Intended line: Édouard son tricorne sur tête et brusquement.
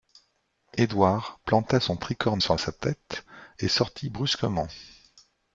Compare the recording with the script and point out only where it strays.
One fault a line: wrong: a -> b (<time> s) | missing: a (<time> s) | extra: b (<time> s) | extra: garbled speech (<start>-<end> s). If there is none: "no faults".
extra: planta (1.4 s)
extra: sa (2.6 s)
extra: sortit (3.7 s)